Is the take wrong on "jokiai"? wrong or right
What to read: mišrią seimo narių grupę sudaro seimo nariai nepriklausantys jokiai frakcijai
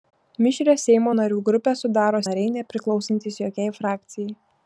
right